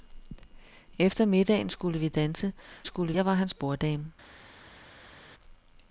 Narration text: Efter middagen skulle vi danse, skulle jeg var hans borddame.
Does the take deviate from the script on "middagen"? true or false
false